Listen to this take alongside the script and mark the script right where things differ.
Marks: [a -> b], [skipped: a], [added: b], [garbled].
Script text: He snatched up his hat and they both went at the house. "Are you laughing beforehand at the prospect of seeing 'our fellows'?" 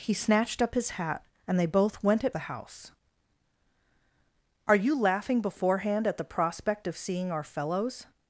He snatched up his hat and they both went at the house. "Are you laughing beforehand at the prospect of seeing 'our fellows'?"